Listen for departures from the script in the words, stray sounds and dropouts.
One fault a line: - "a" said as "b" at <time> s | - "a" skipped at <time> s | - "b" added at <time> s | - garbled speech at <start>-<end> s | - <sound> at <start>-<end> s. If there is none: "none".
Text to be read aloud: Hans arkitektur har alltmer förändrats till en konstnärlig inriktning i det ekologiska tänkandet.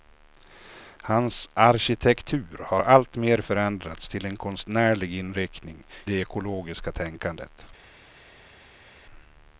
- "i" skipped at 5.8 s